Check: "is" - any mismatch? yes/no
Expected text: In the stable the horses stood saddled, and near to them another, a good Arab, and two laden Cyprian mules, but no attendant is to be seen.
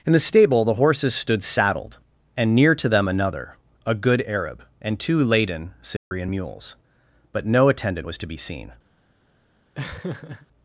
yes